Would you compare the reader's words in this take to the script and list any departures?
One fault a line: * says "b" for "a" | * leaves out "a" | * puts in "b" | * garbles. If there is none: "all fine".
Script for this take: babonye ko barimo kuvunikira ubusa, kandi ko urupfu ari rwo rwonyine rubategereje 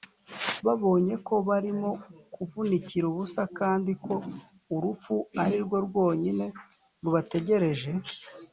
all fine